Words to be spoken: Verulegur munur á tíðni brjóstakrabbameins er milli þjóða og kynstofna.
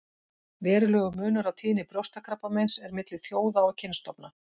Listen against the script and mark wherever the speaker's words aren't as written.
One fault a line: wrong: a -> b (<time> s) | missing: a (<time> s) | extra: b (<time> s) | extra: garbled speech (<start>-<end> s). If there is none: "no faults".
no faults